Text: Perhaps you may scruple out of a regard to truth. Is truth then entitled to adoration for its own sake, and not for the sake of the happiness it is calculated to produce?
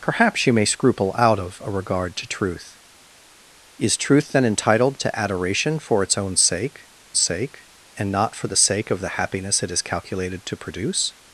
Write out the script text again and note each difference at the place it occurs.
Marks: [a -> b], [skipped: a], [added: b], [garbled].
Perhaps you may scruple out of a regard to truth. Is truth then entitled to adoration for its own sake, [added: sake] and not for the sake of the happiness it is calculated to produce?